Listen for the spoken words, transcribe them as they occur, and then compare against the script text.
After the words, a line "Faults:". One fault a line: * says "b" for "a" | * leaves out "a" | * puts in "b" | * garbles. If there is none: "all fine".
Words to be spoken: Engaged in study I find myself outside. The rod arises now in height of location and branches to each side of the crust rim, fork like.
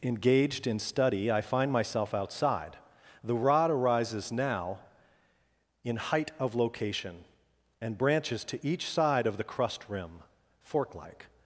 Engaged in study I find myself outside. The rod arises now in height of location and branches to each side of the crust rim, fork like.
Faults:
all fine